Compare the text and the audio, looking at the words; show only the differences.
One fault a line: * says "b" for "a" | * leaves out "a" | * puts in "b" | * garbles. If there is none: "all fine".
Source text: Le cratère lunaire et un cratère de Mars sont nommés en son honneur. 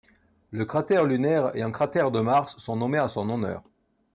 all fine